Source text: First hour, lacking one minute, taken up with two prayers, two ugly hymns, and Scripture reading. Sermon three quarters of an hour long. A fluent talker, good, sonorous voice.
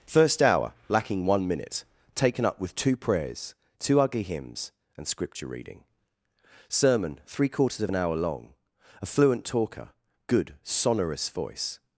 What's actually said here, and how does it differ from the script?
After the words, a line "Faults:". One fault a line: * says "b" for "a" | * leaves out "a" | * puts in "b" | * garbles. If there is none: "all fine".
First hour, lacking one minute, taken up with two prayers, two ugly hymns, and Scripture reading. Sermon three quarters of an hour long. A fluent talker, good, sonorous voice.
Faults:
all fine